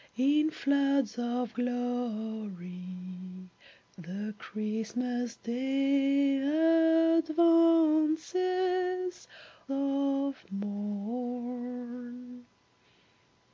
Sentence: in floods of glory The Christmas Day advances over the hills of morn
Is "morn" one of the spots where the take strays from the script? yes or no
no